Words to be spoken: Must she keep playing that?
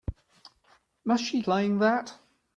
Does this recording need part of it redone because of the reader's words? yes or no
yes